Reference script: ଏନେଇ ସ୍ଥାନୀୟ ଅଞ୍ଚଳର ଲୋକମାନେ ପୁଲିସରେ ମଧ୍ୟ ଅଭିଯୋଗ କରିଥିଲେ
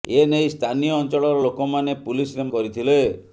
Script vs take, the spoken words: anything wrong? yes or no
yes